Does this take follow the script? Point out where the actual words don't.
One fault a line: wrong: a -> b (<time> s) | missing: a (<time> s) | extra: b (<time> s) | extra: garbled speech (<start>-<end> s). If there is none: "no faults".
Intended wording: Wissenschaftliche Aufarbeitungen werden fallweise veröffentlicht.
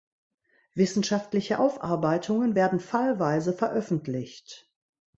no faults